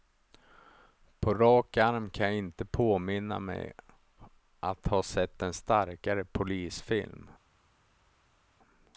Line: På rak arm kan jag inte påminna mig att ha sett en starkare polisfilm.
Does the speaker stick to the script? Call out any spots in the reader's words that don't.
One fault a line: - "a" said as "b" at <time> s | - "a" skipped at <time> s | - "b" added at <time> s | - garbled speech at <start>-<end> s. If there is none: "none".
none